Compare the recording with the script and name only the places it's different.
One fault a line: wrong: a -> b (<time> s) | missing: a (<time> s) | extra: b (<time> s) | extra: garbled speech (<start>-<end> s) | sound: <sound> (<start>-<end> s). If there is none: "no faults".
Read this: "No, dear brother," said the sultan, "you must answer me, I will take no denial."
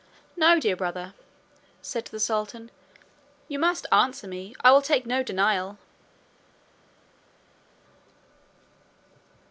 no faults